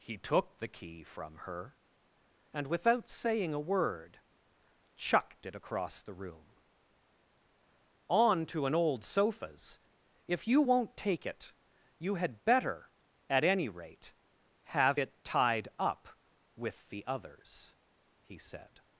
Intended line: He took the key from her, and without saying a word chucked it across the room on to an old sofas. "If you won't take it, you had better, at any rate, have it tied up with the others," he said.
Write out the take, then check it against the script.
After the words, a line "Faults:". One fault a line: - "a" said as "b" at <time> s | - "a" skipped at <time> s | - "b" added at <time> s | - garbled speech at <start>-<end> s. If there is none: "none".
He took the key from her, and without saying a word chucked it across the room on to an old sofas. "If you won't take it, you had better, at any rate, have it tied up with the others," he said.
Faults:
none